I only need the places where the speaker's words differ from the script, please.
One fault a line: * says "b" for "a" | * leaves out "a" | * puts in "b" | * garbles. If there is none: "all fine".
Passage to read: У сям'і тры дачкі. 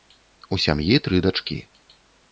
all fine